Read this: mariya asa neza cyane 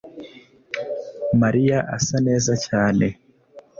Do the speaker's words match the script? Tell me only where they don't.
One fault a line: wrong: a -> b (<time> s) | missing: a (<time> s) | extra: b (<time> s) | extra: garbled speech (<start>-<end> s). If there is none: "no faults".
no faults